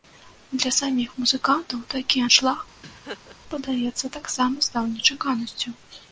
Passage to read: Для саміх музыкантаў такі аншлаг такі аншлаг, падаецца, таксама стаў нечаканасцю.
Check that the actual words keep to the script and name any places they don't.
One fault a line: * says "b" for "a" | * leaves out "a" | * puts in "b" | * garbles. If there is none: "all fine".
* leaves out "такі аншлаг"